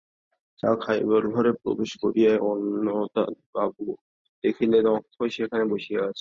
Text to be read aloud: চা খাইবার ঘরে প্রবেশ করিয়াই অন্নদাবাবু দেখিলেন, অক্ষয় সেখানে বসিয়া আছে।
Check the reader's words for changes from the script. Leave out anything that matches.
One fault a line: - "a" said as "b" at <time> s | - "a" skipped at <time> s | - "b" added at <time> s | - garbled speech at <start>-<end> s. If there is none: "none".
none